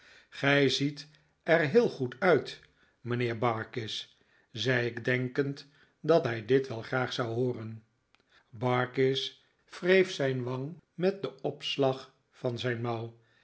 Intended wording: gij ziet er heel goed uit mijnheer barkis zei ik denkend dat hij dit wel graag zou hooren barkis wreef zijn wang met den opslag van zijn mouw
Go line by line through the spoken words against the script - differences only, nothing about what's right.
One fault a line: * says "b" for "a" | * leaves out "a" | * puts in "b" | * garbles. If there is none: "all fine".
all fine